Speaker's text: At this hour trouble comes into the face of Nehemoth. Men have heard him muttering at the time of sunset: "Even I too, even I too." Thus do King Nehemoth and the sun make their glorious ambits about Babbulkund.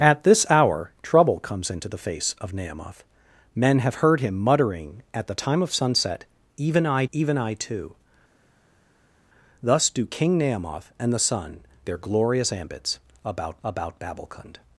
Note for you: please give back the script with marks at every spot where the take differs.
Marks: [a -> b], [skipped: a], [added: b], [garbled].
At this hour trouble comes into the face of Nehemoth. Men have heard him muttering at the time of sunset: "Even I [skipped: too,] even I too." Thus do King Nehemoth and the sun [skipped: make] their glorious ambits about [added: about] Babbulkund.